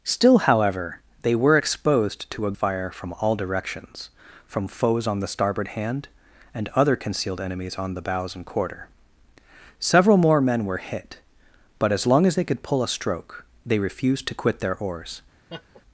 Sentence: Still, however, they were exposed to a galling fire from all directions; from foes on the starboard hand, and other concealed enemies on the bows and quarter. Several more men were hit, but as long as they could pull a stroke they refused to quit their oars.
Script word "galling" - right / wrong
wrong